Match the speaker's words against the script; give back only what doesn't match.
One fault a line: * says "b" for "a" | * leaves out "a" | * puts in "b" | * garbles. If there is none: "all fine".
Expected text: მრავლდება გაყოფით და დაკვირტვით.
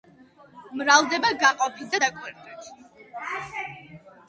all fine